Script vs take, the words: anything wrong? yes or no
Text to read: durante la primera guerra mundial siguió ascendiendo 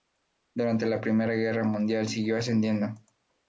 no